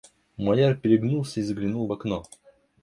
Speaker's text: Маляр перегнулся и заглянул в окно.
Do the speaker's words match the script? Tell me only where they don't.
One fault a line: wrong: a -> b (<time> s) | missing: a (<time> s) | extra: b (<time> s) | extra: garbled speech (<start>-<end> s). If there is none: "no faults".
no faults